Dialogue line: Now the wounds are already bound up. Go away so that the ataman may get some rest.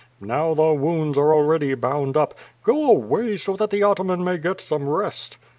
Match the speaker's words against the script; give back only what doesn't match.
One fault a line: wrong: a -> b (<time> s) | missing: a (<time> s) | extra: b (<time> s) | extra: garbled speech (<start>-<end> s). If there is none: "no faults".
no faults